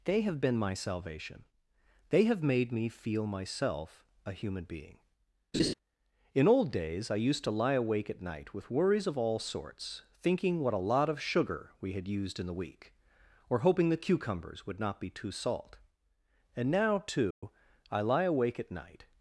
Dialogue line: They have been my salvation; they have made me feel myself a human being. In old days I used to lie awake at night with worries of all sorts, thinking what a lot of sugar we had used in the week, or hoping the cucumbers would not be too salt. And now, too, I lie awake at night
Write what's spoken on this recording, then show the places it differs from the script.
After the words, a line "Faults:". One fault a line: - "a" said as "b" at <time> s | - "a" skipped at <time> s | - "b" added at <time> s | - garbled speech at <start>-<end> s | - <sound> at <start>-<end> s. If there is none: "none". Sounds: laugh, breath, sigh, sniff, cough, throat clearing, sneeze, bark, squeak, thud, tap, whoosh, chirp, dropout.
They have been my salvation; they have made me feel myself a human being. In old days I used to lie awake at night with worries of all sorts, thinking what a lot of sugar we had used in the week, or hoping the cucumbers would not be too salt. And now, too, I lie awake at night
Faults:
- laugh at 5.5-5.7 s
- dropout at 17.3-17.4 s